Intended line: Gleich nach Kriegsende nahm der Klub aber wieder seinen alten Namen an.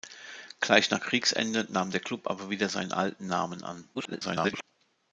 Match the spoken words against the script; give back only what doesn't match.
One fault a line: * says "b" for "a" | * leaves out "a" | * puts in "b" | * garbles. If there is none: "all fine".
* garbles